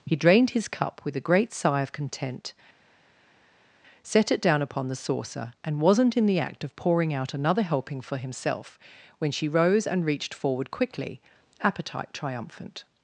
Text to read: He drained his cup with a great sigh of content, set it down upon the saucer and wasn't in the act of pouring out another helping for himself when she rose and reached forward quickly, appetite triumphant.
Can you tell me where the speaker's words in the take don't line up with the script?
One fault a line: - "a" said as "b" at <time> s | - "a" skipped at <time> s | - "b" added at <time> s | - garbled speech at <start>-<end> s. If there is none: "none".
none